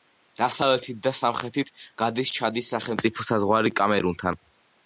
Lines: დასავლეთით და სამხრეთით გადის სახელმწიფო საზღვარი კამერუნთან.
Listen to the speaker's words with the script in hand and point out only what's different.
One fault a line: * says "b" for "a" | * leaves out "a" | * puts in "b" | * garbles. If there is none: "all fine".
* puts in "ჩადის"